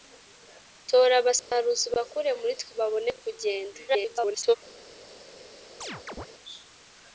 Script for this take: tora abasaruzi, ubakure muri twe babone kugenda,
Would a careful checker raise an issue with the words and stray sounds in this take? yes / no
yes